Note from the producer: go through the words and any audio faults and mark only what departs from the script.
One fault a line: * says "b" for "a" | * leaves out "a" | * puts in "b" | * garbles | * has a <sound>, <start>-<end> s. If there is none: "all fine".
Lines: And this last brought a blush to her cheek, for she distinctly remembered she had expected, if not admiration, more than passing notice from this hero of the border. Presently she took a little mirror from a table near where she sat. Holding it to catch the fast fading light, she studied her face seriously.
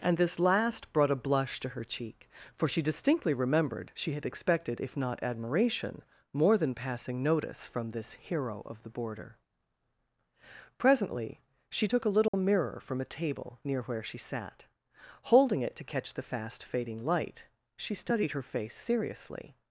* has a dropout, 12.3-12.3 s